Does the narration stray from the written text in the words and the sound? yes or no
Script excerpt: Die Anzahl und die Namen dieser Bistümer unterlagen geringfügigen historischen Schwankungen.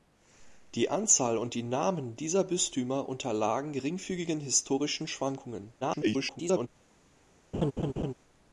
yes